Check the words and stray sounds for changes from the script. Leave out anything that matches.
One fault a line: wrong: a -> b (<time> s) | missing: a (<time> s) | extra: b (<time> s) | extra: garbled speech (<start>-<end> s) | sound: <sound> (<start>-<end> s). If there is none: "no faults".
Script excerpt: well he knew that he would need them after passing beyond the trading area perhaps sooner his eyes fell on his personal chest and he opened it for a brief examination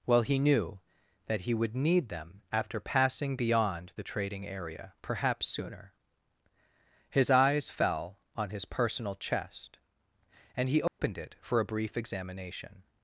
sound: dropout (10.9-11.0 s)